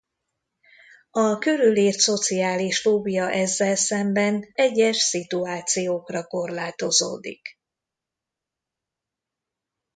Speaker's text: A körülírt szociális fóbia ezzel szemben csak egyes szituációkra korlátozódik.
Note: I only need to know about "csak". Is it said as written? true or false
false